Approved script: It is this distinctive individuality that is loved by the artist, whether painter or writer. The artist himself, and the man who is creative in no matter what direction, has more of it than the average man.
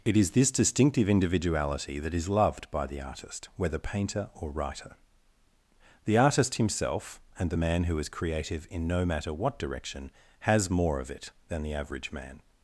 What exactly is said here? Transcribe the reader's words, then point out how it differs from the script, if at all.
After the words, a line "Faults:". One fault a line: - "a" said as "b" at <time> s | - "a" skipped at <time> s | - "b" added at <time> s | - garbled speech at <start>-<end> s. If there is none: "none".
It is this distinctive individuality that is loved by the artist, whether painter or writer. The artist himself, and the man who is creative in no matter what direction, has more of it than the average man.
Faults:
none